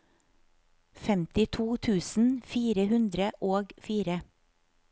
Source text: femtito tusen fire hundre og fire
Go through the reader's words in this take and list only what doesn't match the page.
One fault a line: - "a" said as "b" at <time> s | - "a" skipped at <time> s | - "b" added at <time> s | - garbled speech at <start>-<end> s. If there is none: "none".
none